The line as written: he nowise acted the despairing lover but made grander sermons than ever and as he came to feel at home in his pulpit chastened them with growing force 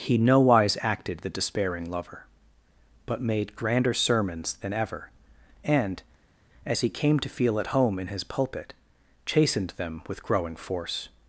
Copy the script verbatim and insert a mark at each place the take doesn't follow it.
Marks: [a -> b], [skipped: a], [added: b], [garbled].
he nowise acted the despairing lover but made grander sermons than ever and as he came to feel at home in his pulpit chastened them with growing force